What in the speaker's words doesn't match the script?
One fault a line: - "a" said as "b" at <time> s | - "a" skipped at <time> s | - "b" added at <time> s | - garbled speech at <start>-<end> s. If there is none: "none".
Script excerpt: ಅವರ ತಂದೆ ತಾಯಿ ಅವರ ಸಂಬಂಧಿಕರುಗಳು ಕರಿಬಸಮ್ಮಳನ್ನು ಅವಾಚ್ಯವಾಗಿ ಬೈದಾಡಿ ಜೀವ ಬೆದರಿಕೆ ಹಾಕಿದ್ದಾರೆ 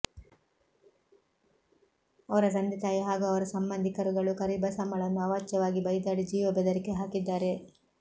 - "ಹಾಗೂ" added at 3.0 s